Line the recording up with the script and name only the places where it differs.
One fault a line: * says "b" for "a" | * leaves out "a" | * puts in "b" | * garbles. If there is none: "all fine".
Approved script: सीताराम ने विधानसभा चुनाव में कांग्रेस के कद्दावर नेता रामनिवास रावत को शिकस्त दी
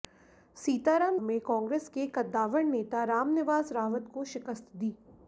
* leaves out "ने विधानसभा चुनाव"